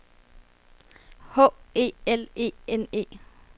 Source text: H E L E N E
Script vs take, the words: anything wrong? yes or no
no